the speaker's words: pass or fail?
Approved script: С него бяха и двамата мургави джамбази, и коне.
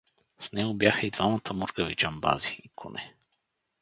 pass